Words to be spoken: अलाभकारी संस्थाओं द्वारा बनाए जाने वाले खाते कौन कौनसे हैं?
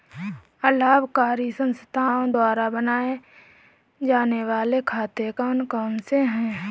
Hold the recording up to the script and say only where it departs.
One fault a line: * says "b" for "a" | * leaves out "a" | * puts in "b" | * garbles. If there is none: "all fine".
all fine